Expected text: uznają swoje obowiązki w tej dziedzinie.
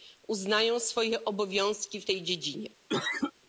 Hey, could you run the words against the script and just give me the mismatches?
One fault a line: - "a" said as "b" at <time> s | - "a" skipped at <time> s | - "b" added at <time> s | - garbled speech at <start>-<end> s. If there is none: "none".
none